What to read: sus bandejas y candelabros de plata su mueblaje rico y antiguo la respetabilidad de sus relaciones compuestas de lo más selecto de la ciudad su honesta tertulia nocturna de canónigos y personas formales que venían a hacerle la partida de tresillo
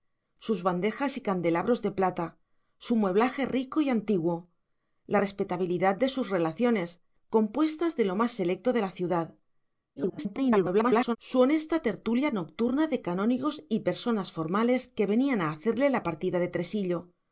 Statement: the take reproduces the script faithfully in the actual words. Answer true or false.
false